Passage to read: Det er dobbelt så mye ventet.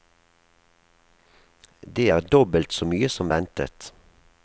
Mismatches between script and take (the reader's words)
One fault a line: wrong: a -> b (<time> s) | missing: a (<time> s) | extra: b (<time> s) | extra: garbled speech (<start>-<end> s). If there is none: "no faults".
extra: som (3.1 s)